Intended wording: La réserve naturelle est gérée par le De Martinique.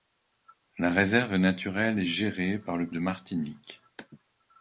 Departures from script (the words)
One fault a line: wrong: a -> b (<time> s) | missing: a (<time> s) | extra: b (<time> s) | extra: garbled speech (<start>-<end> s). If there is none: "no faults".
no faults